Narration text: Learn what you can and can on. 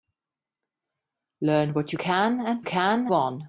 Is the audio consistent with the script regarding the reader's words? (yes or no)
yes